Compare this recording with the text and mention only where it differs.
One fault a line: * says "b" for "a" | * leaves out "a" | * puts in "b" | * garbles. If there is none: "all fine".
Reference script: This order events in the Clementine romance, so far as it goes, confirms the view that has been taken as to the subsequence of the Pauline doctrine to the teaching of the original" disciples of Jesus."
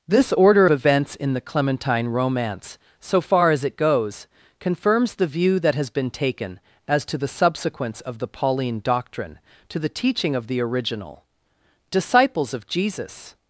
all fine